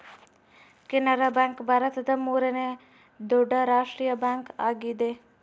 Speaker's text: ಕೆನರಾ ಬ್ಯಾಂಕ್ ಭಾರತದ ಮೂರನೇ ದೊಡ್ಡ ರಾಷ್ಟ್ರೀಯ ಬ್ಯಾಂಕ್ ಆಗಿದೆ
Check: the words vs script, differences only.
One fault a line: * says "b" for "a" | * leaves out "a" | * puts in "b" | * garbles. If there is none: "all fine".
all fine